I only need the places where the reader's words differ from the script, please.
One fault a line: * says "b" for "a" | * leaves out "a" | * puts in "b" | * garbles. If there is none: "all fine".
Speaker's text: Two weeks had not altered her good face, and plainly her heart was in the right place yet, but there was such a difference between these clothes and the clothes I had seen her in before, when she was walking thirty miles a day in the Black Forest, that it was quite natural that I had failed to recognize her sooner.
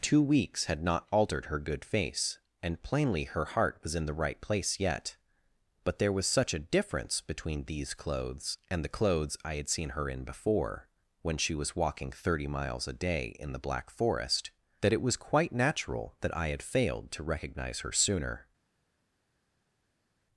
all fine